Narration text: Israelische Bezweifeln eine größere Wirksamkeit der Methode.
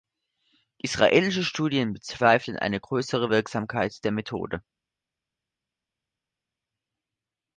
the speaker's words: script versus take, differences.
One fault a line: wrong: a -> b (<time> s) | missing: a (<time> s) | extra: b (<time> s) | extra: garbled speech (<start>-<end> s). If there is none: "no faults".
extra: Studien (1.4 s)